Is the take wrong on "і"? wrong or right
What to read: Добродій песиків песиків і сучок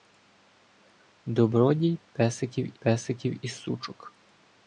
right